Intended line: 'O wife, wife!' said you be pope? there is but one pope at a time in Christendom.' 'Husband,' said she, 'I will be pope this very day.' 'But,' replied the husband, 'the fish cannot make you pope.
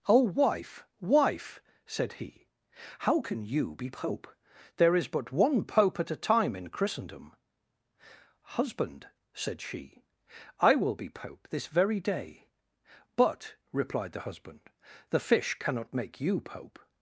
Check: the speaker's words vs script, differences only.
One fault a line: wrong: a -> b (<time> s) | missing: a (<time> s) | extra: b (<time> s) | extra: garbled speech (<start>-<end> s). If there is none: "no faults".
extra: he how can (2.1 s)